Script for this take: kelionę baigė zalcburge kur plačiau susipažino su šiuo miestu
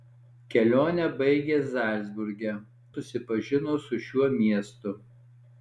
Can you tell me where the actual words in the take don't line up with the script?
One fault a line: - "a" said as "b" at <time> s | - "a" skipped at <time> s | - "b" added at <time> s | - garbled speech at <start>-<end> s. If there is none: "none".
- "kur plačiau" skipped at 2.5 s